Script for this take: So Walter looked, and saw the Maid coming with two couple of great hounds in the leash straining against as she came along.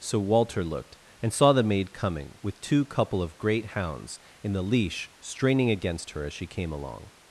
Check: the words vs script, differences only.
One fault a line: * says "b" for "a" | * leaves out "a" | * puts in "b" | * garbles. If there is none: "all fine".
* puts in "her"